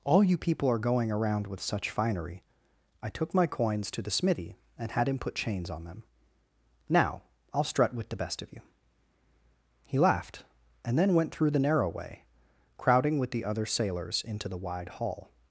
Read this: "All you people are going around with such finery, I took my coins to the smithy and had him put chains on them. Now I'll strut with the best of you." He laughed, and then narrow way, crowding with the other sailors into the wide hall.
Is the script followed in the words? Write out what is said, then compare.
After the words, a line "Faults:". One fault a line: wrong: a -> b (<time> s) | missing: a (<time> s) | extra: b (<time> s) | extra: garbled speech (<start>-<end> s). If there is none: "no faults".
"All you people are going around with such finery, I took my coins to the smithy and had him put chains on them. Now I'll strut with the best of you." He laughed, and then went through the narrow way, crowding with the other sailors into the wide hall.
Faults:
extra: went through the (11.1 s)